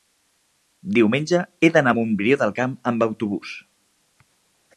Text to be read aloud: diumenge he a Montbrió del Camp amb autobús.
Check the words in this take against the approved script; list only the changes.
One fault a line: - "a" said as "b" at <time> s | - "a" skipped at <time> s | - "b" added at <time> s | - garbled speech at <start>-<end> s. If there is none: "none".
- "d'anar" added at 1.8 s